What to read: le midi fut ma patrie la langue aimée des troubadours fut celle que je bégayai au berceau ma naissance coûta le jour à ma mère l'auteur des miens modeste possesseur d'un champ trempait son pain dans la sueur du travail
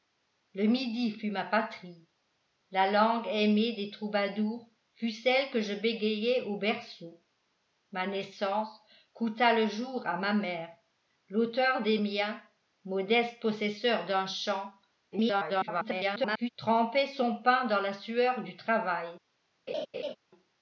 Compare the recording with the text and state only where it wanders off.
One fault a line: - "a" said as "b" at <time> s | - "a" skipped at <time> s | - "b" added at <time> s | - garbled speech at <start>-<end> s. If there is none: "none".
- garbled speech at 15.1-16.5 s